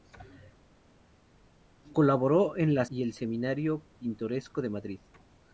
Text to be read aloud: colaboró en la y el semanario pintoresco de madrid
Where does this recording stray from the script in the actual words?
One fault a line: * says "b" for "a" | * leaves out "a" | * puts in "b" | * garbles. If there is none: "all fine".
all fine